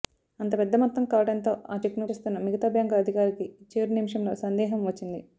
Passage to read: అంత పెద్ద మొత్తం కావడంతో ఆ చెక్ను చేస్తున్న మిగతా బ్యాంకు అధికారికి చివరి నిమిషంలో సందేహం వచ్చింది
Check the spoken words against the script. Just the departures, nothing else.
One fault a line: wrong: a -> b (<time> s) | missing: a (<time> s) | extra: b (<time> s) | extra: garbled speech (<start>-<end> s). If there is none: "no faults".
no faults